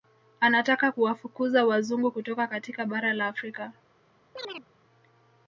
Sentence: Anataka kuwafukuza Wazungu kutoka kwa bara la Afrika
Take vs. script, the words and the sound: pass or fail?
fail